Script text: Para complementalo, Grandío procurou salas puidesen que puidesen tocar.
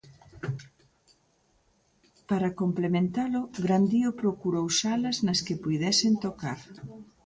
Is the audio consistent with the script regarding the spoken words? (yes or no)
no